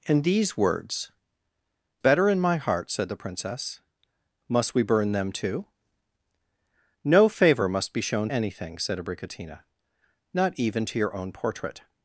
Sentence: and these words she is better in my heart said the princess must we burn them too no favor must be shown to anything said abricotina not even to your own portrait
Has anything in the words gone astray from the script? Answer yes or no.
yes